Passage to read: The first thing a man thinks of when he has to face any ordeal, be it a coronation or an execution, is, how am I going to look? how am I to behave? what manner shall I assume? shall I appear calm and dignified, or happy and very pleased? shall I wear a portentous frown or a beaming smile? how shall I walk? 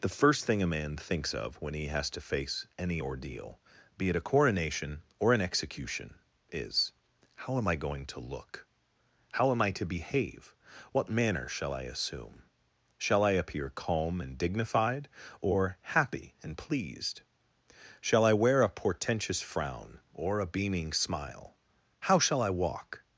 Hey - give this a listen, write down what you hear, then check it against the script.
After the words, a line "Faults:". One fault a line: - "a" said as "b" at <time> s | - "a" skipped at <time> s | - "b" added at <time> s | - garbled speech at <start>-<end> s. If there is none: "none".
The first thing a man thinks of when he has to face any ordeal, be it a coronation or an execution, is, how am I going to look? how am I to behave? what manner shall I assume? shall I appear calm and dignified, or happy and pleased? shall I wear a portentous frown or a beaming smile? how shall I walk?
Faults:
- "very" skipped at 16.6 s